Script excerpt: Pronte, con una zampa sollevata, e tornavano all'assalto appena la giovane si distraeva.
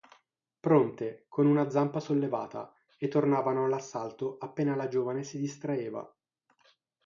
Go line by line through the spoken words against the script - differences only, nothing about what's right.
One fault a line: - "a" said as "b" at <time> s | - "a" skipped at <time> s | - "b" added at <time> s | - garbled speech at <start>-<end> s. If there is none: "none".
none